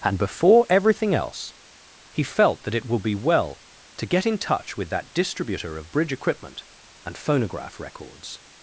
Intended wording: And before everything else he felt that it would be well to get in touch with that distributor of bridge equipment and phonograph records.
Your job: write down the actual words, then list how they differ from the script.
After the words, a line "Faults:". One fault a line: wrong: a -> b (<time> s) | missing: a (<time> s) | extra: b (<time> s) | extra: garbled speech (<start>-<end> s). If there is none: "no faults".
And before everything else he felt that it would be well to get in touch with that distributor of bridge equipment and phonograph records.
Faults:
no faults